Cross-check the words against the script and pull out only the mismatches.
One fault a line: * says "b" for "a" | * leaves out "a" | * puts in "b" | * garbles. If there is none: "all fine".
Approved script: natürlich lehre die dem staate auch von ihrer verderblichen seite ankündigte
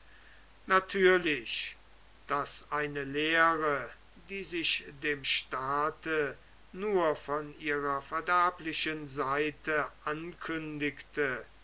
* puts in "daß eine"
* puts in "sich"
* says "nur" for "auch"